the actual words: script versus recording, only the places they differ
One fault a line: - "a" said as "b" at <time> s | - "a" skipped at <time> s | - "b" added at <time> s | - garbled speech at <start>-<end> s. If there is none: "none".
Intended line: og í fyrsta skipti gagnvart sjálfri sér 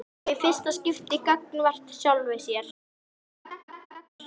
none